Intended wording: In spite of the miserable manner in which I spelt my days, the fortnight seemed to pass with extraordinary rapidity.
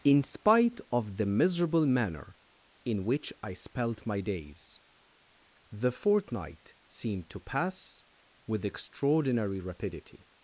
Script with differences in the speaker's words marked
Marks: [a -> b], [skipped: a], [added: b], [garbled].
In spite of the miserable manner in which I spelt my days, the fortnight seemed to pass with extraordinary rapidity.